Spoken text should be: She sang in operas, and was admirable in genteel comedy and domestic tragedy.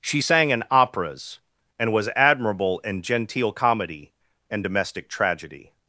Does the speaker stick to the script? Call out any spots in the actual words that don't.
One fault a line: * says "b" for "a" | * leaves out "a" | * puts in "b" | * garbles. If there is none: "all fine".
all fine